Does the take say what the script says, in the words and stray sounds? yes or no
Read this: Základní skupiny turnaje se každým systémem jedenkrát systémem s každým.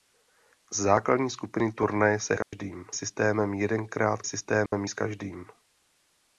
no